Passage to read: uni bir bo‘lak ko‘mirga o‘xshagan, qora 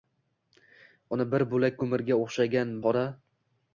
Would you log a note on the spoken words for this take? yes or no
no